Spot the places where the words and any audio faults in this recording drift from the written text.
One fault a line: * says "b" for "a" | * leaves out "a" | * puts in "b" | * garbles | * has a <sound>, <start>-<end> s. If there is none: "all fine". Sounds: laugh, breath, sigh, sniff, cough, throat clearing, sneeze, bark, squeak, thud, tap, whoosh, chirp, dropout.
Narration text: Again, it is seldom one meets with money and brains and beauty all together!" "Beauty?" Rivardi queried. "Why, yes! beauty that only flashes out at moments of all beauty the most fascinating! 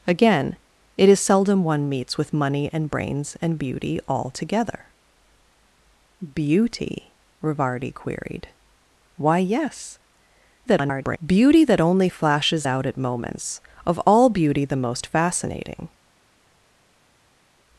* garbles